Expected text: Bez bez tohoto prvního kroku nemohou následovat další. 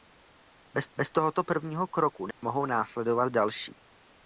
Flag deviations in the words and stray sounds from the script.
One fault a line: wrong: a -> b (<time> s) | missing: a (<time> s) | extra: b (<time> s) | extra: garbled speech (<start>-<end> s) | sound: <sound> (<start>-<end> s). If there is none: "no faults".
sound: dropout (2.3-2.4 s)